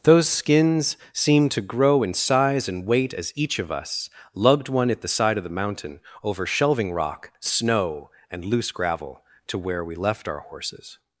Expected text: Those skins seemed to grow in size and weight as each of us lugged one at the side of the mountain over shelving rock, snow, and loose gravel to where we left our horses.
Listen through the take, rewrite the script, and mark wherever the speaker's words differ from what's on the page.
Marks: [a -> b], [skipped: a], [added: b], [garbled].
Those skins seemed to grow in size and weight as each of us lugged one at the side of the mountain over shelving rock, snow, and loose gravel to where we left our horses.